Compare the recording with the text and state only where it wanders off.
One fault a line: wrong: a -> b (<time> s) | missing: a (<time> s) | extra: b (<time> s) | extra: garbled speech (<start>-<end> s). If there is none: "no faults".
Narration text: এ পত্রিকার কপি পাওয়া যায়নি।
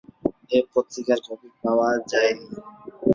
no faults